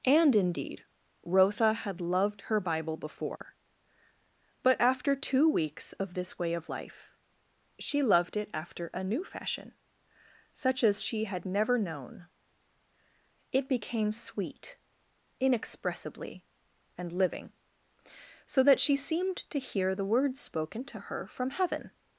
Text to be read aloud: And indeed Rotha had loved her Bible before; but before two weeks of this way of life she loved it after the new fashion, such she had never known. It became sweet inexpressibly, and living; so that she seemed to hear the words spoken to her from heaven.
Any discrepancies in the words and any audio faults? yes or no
yes